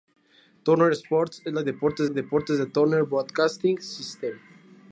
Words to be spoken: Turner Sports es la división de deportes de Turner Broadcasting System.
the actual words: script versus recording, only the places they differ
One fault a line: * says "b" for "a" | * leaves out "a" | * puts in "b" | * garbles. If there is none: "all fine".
* says "deportes" for "división"